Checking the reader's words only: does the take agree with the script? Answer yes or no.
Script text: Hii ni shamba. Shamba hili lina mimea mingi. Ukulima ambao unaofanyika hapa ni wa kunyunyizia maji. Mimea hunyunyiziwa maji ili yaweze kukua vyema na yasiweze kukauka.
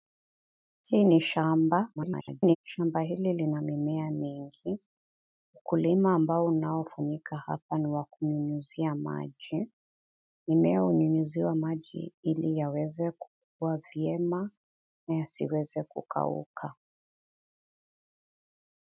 no